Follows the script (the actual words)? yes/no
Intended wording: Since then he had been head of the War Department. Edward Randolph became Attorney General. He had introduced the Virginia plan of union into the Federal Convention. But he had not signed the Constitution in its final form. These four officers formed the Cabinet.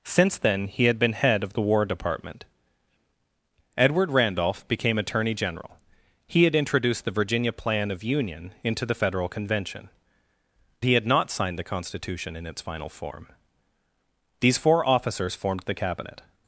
no